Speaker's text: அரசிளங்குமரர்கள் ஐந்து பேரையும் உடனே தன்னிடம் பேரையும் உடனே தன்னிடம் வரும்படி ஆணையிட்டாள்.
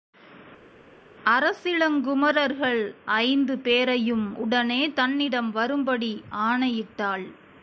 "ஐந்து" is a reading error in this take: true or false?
false